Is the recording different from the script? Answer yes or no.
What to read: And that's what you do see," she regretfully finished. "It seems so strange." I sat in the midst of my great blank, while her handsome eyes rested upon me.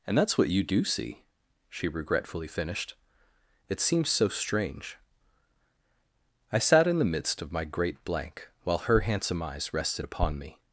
no